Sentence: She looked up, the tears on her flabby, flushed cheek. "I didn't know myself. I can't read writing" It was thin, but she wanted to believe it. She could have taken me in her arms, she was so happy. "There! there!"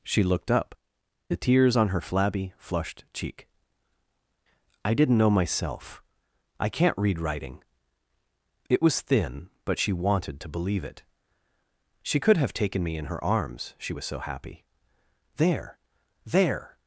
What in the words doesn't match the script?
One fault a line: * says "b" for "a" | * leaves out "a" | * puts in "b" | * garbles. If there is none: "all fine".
all fine